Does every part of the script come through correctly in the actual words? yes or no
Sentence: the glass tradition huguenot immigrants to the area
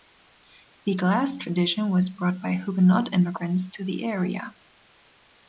no